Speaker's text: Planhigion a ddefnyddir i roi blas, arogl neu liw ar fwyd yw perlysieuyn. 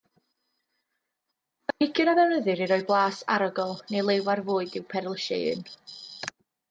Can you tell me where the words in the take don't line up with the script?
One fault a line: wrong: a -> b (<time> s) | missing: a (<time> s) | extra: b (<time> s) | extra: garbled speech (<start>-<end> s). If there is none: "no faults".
no faults